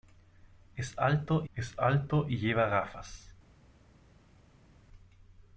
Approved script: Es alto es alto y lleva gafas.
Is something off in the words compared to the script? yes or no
no